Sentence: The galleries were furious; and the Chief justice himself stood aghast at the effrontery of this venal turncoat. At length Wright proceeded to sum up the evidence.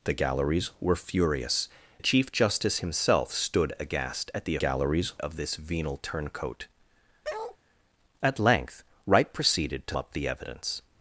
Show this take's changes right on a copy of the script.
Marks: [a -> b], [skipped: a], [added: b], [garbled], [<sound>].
The galleries were furious; [skipped: and] the Chief justice himself stood aghast at the [effrontery -> galleries] of this venal turncoat. [bark] At length Wright proceeded to [skipped: sum] up the evidence.